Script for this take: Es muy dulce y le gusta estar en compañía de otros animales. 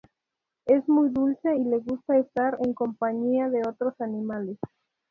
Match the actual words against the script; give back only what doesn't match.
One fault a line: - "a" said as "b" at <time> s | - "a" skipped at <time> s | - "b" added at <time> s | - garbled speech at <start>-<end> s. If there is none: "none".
none